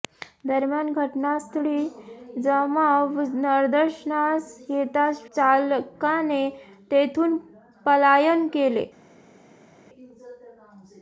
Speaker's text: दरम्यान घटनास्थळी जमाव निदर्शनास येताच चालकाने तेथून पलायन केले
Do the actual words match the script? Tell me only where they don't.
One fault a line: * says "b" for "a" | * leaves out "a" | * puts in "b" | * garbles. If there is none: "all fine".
all fine